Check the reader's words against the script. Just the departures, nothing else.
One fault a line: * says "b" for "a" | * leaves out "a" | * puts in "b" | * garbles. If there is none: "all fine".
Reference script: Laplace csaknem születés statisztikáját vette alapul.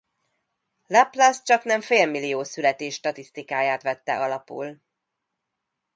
* puts in "félmillió"